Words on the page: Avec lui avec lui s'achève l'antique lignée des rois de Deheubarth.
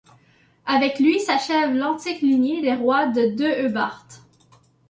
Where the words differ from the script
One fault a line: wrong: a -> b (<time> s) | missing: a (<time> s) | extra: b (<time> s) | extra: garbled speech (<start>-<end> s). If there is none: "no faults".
missing: avec lui (1.2 s)